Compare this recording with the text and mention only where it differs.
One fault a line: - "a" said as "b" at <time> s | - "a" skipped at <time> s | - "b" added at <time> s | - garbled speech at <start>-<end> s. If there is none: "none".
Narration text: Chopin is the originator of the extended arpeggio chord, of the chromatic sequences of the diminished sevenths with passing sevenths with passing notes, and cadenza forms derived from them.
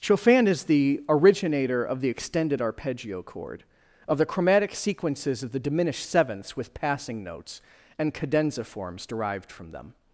- "sevenths with passing" skipped at 7.2 s